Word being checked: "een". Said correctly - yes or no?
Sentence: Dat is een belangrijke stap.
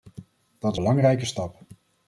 no